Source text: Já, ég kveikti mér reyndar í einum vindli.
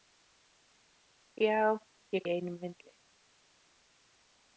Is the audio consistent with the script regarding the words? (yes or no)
no